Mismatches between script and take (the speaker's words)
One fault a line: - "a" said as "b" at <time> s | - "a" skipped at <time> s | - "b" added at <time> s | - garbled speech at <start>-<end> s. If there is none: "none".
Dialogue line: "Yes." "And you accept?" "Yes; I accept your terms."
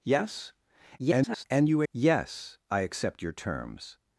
- garbled speech at 1.0-1.4 s
- "accept" skipped at 1.8 s